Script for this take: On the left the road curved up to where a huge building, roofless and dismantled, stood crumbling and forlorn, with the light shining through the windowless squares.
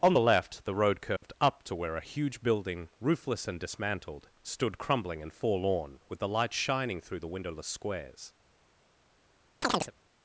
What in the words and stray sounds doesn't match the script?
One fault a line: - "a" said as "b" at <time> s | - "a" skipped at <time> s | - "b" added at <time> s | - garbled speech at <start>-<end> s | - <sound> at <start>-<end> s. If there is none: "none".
- dropout at 1.2-1.2 s
- chirp at 9.6-9.9 s